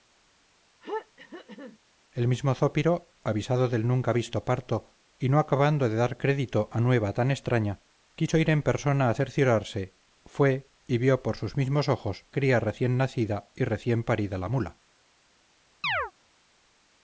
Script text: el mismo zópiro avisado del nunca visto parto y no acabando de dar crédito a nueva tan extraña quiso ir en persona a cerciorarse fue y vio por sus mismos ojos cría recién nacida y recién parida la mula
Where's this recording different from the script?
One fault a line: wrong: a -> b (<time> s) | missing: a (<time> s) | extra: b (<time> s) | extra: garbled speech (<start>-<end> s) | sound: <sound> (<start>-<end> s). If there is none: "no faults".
sound: throat clearing (0.8-1.8 s)
sound: chirp (15.8-16.1 s)